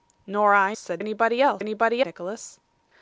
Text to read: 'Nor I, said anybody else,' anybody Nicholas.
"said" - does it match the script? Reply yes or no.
yes